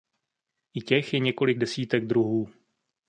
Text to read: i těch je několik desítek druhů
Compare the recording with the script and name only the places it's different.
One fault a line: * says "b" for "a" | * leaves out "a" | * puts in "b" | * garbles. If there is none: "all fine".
all fine